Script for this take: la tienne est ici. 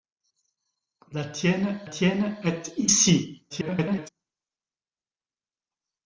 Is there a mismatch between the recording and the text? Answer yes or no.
yes